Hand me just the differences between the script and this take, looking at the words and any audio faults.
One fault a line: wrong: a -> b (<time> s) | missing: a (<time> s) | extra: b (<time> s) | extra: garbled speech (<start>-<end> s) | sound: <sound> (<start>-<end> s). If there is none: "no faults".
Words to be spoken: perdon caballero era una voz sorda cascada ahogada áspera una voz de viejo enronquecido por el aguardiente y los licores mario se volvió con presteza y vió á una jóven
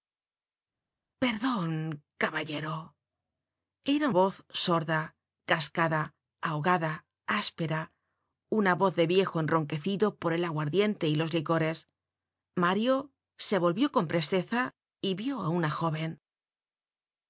missing: una (4.1 s)